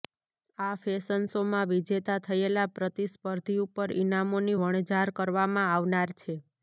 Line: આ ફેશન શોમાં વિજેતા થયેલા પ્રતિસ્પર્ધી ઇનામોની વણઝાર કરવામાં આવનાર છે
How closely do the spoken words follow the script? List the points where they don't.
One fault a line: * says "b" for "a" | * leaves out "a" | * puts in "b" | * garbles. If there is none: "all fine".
* puts in "ઉપર"